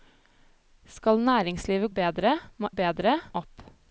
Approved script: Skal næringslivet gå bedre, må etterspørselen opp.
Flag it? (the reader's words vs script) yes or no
yes